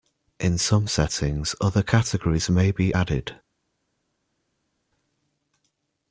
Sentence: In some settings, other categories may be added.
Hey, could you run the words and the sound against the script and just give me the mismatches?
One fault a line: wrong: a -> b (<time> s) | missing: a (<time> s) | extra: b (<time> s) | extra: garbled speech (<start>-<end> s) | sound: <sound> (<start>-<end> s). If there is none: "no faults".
no faults